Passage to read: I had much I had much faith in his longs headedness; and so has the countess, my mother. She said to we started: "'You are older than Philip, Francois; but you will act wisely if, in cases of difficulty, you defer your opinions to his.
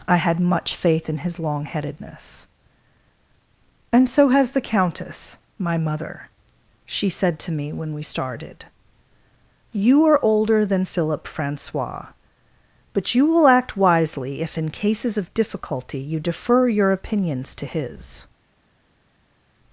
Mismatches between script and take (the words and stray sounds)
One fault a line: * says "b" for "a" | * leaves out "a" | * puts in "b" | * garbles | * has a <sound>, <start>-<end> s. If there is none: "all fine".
* leaves out "I had much"
* says "long" for "longs"
* puts in "me when"